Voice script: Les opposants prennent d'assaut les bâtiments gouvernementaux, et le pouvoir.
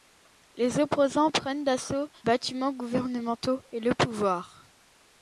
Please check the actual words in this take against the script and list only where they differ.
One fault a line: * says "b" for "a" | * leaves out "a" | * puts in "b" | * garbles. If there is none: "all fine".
* leaves out "les"